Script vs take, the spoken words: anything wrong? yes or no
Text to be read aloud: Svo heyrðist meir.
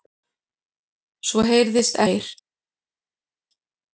no